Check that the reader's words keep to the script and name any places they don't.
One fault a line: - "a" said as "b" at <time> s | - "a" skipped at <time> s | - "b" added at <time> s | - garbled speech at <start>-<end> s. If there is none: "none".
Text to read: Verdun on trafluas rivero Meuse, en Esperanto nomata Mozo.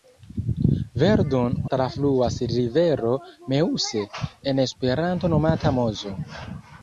- "on" skipped at 1.6 s